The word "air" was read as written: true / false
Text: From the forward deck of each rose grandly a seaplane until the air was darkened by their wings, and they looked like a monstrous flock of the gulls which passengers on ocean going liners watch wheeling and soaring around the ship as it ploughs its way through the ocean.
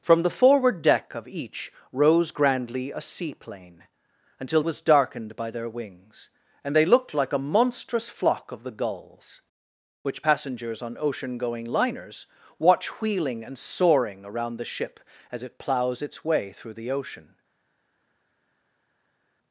false